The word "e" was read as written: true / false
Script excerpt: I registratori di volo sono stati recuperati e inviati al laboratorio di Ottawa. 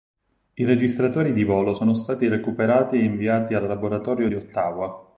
true